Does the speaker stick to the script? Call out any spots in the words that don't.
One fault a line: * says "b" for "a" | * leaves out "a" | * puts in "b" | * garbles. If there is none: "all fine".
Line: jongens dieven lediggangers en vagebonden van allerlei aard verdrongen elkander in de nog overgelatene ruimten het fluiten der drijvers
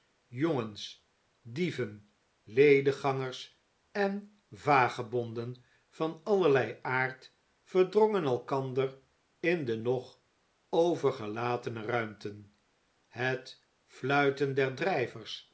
all fine